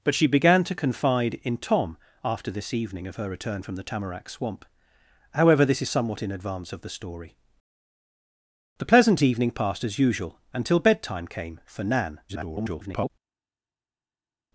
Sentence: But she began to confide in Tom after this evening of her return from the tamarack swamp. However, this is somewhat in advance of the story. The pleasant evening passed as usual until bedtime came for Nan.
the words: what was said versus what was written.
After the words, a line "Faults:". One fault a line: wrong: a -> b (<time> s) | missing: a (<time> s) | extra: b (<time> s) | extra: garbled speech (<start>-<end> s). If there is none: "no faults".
But she began to confide in Tom after this evening of her return from the tamarack swamp. However, this is somewhat in advance of the story. The pleasant evening passed as usual until bedtime came for Nan. [garbled]
Faults:
extra: garbled speech (12.3-13.1 s)